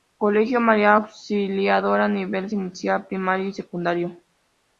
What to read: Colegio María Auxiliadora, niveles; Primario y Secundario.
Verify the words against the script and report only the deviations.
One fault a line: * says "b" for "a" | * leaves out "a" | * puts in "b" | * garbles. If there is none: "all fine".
* puts in "Inicial"